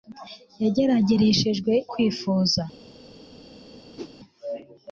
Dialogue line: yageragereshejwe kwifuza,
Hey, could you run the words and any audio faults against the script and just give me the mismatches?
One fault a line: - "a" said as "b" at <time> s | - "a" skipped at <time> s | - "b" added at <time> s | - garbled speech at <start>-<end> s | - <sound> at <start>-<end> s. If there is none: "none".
- whoosh at 4.0-4.1 s